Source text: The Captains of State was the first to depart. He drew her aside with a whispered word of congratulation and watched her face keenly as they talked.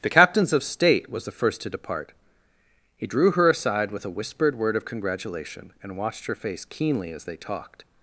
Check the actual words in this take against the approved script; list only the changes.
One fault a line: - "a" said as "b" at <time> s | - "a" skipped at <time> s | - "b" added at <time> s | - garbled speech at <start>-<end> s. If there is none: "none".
none